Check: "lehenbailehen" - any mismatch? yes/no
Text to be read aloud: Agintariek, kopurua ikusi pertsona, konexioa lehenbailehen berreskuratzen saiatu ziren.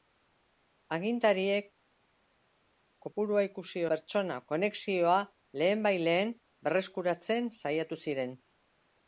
no